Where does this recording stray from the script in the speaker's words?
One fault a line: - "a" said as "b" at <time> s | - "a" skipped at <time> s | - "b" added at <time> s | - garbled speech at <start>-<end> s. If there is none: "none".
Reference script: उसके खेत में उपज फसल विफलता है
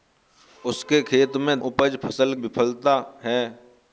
none